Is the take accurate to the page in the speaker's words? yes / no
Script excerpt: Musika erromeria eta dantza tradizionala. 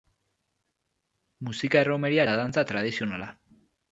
yes